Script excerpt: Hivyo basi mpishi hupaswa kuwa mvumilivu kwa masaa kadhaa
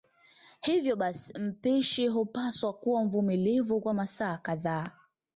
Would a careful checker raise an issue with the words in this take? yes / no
no